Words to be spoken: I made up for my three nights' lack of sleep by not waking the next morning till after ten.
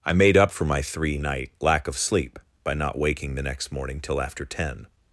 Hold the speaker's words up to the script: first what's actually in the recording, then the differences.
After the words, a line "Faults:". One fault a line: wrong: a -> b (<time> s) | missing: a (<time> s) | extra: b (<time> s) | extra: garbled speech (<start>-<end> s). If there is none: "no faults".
I made up for my three night' lack of sleep by not waking the next morning till after ten.
Faults:
wrong: nights -> night (1.2 s)